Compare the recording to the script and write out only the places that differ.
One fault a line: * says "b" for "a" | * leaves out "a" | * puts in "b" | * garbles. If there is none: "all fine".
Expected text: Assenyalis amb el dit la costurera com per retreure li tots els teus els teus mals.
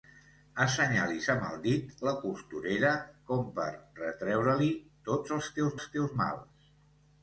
all fine